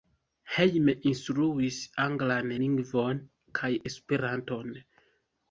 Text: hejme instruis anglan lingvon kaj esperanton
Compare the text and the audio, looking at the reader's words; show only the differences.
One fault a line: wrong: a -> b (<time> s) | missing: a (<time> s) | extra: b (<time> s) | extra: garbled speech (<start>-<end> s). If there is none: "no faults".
no faults